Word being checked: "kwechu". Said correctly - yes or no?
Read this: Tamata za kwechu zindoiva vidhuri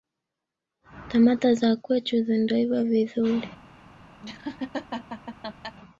yes